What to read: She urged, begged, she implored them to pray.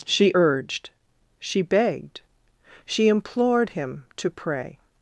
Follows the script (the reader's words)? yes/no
no